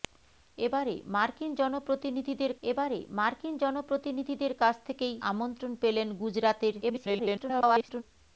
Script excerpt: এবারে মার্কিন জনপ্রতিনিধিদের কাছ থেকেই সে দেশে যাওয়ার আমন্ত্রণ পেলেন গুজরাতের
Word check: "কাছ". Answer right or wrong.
wrong